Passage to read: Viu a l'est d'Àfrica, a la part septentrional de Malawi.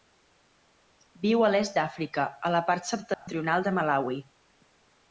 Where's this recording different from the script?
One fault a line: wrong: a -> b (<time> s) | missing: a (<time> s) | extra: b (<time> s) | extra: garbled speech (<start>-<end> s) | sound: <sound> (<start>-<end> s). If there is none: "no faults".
sound: dropout (3.1-3.3 s)